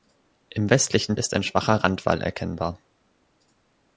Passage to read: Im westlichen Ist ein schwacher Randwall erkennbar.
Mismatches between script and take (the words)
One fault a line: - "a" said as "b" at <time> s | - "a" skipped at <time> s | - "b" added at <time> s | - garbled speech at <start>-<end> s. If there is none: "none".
none